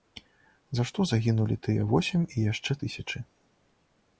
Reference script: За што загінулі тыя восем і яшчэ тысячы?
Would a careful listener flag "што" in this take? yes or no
no